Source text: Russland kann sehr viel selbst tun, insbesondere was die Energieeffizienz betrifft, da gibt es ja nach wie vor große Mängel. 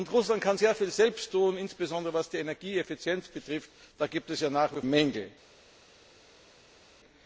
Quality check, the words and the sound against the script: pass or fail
fail